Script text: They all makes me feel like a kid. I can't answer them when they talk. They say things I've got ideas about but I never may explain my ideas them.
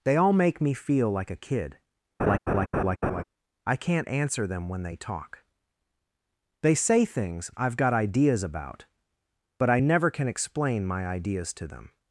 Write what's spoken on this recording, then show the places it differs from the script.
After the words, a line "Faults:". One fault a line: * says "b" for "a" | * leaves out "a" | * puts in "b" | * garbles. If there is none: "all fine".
They all make me feel like a kid. I can't answer them when they talk. They say things I've got ideas about but I never can explain my ideas to them.
Faults:
* says "make" for "makes"
* says "can" for "may"
* puts in "to"